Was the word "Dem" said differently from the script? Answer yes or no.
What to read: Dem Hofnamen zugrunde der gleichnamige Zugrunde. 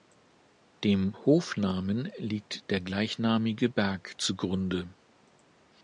no